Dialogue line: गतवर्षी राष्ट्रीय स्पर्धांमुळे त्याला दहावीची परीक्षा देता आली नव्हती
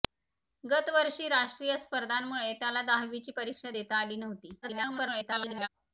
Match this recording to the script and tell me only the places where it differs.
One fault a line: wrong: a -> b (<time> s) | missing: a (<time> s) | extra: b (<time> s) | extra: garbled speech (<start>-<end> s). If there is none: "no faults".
extra: garbled speech (4.6-5.7 s)